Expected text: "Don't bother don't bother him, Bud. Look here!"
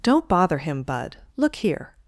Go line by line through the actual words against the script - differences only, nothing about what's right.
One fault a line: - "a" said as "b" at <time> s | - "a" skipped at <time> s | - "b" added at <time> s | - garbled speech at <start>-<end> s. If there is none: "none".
- "don't bother" skipped at 0.6 s